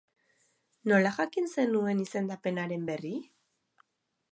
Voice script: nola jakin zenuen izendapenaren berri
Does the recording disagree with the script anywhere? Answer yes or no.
no